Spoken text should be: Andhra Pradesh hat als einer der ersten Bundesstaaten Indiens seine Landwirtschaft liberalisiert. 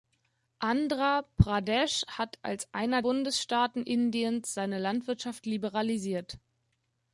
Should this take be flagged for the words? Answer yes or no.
yes